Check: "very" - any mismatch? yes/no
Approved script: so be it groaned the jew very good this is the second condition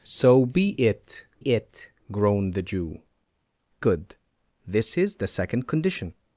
yes